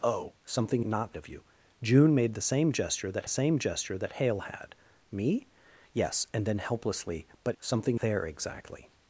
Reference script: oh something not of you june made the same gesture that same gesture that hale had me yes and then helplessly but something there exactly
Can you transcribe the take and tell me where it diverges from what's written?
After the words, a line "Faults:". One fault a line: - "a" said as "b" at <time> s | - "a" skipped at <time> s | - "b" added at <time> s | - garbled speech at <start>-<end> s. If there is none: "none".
oh something not of you june made the same gesture that same gesture that hale had me yes and then helplessly but something there exactly
Faults:
none